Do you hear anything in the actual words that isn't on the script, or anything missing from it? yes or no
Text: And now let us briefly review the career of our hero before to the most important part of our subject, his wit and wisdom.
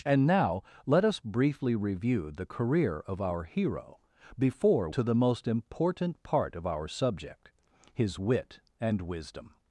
no